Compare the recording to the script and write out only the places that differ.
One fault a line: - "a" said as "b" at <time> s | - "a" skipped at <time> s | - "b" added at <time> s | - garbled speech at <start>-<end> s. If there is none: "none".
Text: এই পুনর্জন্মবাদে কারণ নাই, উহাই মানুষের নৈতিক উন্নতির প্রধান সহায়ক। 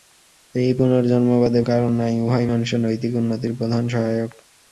none